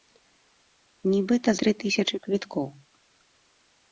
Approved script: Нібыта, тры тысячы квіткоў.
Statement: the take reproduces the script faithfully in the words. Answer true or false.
true